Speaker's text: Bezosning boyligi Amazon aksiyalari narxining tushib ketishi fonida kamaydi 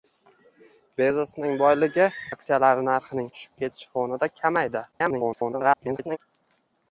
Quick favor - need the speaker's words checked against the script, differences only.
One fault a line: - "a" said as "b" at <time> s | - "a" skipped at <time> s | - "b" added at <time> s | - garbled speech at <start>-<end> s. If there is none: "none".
- "Amazon" skipped at 2.1 s
- garbled speech at 4.9-6.2 s